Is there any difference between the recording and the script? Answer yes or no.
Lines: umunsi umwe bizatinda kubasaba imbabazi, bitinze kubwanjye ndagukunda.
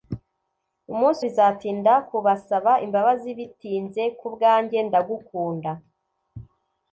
yes